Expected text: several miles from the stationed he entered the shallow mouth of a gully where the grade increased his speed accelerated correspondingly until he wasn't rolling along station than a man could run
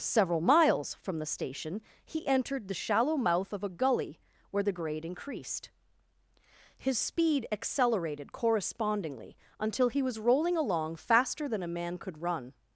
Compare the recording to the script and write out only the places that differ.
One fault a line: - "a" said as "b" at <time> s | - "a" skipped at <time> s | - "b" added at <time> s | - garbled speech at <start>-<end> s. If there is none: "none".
- "stationed" said as "station" at 1.3 s
- "wasn't" said as "was" at 10.0 s
- "station" said as "faster" at 10.9 s